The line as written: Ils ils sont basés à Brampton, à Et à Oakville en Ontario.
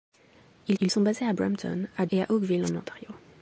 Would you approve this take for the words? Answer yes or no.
yes